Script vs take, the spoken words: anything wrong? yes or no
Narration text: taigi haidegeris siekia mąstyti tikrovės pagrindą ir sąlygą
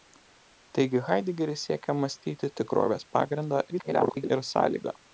yes